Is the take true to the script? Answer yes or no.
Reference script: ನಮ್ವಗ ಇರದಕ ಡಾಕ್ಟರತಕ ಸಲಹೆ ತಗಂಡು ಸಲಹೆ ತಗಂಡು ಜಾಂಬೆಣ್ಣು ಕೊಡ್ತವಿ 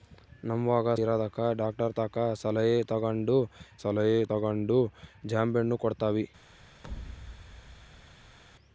yes